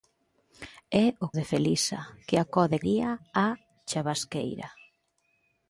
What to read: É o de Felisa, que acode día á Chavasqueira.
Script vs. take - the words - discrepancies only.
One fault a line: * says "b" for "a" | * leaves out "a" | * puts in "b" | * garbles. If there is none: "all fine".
all fine